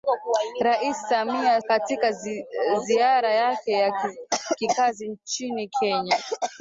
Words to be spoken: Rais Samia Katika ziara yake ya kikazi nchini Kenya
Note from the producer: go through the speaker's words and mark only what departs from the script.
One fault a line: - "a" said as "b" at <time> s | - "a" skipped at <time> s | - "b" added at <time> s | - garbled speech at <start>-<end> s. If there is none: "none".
none